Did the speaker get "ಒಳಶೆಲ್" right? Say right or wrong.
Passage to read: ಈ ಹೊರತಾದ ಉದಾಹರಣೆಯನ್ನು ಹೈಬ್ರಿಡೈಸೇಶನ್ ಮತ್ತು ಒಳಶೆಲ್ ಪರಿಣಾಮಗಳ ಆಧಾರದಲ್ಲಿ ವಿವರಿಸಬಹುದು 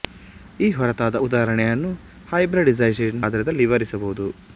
wrong